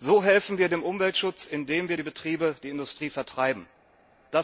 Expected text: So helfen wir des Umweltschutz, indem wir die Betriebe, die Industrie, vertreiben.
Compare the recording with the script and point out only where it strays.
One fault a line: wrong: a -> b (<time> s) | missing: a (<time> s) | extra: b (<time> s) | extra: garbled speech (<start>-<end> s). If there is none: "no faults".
wrong: des -> dem (0.7 s)